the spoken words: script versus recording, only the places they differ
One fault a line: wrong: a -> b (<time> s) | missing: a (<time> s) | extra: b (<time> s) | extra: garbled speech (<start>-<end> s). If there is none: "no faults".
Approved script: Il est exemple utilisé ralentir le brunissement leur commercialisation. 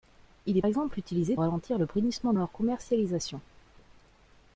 no faults